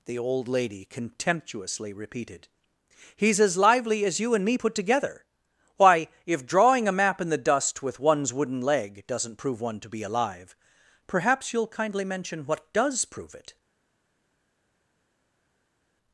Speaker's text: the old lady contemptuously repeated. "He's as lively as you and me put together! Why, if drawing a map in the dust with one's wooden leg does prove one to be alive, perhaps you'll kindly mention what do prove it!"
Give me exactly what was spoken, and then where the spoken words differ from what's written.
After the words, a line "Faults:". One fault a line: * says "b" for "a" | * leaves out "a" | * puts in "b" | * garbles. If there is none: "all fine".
the old lady contemptuously repeated. "He's as lively as you and me put together! Why, if drawing a map in the dust with one's wooden leg doesn't prove one to be alive, perhaps you'll kindly mention what does prove it!"
Faults:
* says "doesn't" for "does"
* says "does" for "do"